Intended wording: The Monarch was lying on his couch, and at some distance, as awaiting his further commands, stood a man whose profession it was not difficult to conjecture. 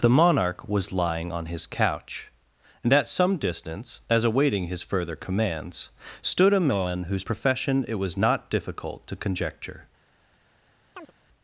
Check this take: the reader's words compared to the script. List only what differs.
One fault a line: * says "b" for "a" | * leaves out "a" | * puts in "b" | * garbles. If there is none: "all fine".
all fine